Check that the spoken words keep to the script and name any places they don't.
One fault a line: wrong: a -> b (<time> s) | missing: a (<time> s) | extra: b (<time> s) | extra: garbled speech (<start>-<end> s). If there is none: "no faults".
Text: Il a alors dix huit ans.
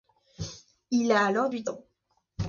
missing: dix (1.5 s)